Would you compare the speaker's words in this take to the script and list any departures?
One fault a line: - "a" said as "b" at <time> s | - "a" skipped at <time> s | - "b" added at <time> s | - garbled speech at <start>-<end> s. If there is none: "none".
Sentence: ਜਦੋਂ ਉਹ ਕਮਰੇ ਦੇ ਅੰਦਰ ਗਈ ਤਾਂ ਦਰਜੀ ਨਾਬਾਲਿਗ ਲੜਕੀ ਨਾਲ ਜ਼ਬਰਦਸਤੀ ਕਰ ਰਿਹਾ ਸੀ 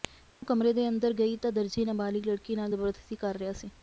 none